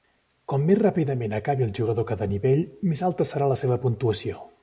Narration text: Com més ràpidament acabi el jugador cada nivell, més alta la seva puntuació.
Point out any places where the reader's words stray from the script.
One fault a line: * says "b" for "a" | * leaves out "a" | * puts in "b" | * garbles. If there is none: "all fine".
* puts in "serà"